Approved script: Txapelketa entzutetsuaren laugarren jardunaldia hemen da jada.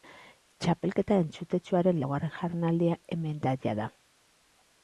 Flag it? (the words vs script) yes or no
no